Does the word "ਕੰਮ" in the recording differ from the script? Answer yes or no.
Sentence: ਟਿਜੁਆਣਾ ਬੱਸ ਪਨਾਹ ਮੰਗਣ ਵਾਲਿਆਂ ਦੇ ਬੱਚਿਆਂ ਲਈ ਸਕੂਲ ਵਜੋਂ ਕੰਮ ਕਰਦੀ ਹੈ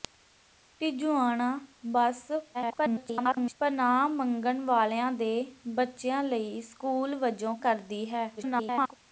yes